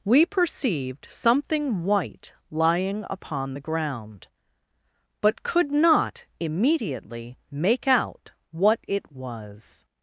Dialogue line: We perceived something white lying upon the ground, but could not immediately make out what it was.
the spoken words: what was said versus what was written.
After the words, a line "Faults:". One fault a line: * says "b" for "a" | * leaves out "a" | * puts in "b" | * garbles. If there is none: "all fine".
We perceived something white lying upon the ground, but could not immediately make out what it was.
Faults:
all fine